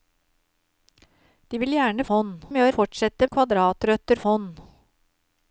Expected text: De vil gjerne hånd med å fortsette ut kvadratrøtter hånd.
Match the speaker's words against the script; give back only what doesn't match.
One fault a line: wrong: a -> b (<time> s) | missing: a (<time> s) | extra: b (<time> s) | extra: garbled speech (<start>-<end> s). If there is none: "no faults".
no faults